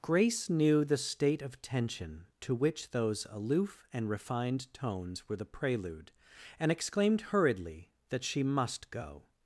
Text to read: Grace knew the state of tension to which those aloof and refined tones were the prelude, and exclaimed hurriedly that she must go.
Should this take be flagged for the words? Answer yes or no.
no